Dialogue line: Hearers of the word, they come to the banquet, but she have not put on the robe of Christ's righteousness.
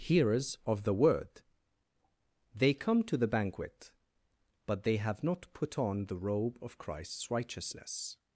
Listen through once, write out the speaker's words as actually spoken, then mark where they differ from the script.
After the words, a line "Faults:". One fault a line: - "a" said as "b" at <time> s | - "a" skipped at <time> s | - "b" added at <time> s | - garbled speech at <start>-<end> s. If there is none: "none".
Hearers of the word, they come to the banquet, but they have not put on the robe of Christ's righteousness.
Faults:
- "she" said as "they" at 4.8 s